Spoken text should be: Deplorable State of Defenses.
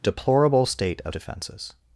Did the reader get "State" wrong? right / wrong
right